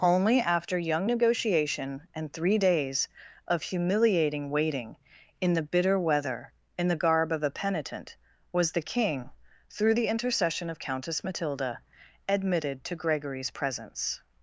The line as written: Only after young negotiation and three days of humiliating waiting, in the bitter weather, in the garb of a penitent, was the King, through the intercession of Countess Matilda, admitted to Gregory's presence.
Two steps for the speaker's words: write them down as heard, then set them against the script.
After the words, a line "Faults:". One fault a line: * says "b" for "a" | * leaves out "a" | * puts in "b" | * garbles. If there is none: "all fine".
Only after young negotiation and three days of humiliating waiting, in the bitter weather, in the garb of a penitent, was the King, through the intercession of Countess Matilda, admitted to Gregory's presence.
Faults:
all fine